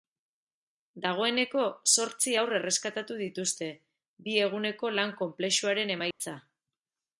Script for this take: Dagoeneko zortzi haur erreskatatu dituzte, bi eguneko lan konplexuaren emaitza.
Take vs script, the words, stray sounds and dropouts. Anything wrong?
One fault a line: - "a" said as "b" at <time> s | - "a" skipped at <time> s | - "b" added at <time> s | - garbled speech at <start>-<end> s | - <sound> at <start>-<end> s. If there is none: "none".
- dropout at 6.1-6.2 s